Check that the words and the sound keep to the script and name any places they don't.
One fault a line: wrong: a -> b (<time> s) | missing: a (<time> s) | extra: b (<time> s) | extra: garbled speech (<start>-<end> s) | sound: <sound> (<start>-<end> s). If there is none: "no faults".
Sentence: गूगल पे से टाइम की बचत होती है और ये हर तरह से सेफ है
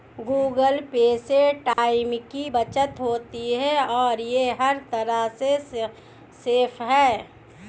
sound: dropout (1.7-1.8 s)